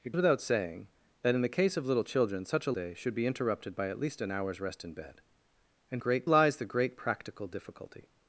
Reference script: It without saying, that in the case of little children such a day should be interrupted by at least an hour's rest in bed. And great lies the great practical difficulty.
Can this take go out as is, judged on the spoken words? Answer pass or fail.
pass